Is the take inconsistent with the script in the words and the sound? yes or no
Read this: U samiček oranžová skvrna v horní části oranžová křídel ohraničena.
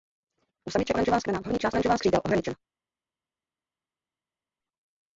no